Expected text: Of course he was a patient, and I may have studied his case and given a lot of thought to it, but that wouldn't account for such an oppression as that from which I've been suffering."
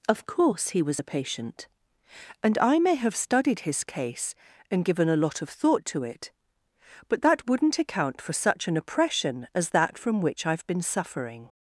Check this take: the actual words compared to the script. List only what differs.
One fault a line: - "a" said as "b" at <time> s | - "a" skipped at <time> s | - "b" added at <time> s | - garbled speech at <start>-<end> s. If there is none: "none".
none